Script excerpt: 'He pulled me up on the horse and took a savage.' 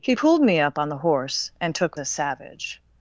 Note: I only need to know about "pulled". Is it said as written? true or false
true